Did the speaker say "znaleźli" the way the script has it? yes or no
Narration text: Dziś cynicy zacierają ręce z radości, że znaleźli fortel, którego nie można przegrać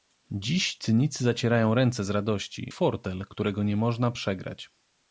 no